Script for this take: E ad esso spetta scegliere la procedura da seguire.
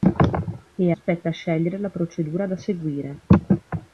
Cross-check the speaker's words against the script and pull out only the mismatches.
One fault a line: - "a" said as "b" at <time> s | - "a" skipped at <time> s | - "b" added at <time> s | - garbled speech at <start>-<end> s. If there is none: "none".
- "ad esso" skipped at 0.9 s